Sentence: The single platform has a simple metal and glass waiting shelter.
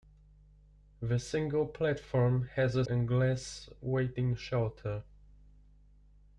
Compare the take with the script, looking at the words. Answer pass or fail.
fail